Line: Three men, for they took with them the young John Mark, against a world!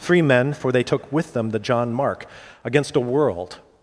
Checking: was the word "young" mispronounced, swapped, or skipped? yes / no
yes